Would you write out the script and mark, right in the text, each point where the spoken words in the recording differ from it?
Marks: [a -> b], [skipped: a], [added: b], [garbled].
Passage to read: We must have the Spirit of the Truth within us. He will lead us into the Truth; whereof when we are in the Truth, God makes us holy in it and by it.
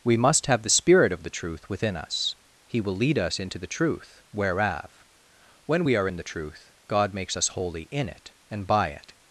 We must have the Spirit of the Truth within us. He will lead us into the Truth; whereof when we are in the Truth, God makes us holy in it and by it.